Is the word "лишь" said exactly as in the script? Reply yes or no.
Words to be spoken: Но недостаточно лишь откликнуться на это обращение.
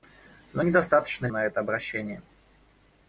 no